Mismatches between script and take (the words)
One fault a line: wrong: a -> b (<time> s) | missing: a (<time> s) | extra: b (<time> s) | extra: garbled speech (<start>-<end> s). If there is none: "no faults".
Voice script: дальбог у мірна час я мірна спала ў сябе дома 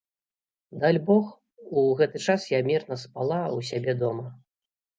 wrong: мірна -> гэты (2.0 s)